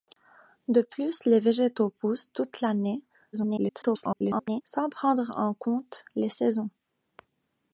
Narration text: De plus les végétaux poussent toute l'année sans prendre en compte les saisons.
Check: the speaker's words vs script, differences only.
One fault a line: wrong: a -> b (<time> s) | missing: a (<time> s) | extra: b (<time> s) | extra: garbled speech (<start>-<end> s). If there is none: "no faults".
extra: garbled speech (3.3-4.6 s)